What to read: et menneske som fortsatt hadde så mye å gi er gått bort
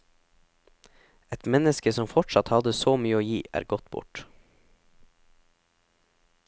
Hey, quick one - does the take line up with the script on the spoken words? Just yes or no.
yes